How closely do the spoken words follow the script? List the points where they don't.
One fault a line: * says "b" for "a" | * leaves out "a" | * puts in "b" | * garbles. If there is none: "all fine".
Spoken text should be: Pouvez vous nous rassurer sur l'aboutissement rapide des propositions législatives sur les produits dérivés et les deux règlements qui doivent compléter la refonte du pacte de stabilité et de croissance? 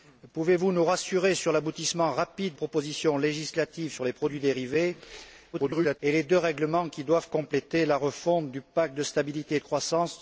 * leaves out "des"
* garbles